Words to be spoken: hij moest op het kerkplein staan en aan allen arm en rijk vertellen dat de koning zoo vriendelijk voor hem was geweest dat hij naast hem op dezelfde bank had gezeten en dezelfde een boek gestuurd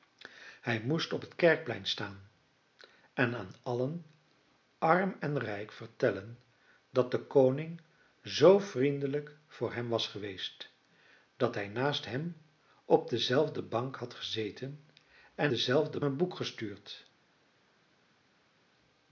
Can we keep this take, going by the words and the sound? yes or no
yes